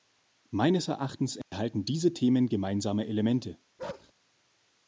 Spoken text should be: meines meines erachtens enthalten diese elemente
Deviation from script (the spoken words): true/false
true